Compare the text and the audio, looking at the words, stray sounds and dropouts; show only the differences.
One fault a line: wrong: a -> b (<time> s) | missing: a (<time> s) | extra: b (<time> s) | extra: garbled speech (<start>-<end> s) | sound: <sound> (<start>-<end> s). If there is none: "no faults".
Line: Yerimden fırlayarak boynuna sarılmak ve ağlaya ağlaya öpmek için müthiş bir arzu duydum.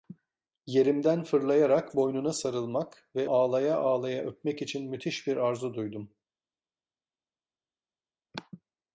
no faults